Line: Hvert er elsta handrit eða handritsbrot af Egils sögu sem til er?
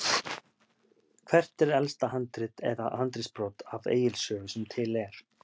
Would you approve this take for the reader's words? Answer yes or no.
yes